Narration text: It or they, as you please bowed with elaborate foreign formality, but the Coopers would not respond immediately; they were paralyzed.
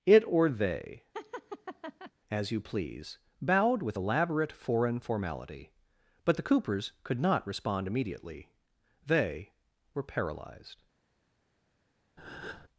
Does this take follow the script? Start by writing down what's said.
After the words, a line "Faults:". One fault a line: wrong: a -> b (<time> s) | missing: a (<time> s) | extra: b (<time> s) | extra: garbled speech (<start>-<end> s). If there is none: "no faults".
It or they, as you please bowed with elaborate foreign formality, but the Coopers could not respond immediately; they were paralyzed.
Faults:
wrong: would -> could (7.0 s)